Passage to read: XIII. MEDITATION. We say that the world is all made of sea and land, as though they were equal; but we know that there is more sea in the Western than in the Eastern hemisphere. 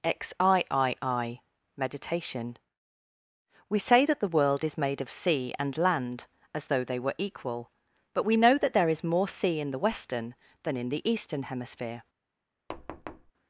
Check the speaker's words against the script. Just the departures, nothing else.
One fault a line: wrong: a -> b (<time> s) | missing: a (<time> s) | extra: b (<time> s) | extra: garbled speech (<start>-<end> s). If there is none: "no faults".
missing: all (4.8 s)